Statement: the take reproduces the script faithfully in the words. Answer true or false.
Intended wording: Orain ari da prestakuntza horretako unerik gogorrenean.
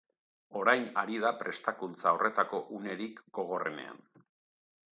true